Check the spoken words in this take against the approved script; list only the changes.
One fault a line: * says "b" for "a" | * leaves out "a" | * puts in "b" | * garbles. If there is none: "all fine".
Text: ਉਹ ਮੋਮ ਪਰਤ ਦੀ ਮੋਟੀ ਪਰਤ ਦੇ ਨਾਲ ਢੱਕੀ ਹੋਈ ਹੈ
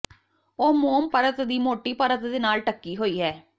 all fine